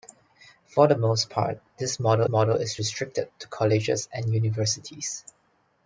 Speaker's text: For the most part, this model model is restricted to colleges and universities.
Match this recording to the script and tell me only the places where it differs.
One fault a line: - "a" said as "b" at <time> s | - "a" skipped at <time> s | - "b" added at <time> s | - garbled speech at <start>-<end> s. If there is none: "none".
none